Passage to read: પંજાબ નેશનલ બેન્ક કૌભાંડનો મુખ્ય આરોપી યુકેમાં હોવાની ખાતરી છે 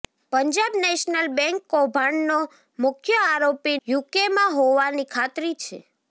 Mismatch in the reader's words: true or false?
false